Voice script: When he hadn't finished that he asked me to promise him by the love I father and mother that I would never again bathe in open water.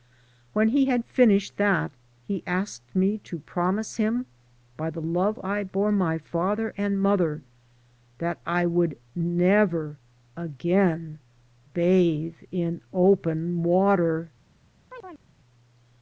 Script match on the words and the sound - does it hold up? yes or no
no